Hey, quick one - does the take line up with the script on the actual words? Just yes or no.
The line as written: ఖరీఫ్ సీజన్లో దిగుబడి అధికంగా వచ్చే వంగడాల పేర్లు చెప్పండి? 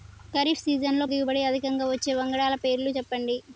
yes